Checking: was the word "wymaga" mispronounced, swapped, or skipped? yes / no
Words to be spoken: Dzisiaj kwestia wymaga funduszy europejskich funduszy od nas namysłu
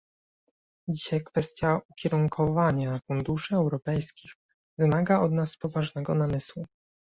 yes